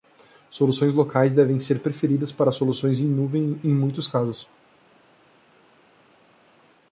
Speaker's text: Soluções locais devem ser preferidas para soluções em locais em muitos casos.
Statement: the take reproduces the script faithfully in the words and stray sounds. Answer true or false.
false